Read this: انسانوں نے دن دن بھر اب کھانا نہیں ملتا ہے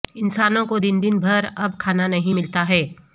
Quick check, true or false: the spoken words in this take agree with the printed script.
false